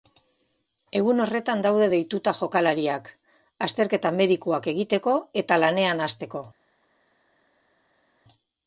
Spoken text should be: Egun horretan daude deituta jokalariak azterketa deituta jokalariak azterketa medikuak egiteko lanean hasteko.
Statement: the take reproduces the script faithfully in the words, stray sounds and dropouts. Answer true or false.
false